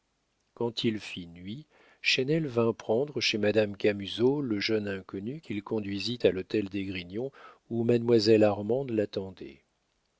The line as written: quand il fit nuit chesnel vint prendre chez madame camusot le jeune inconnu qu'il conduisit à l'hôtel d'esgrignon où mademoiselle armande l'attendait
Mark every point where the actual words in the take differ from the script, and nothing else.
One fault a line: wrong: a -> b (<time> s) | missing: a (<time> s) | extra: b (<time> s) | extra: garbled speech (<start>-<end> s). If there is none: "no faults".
no faults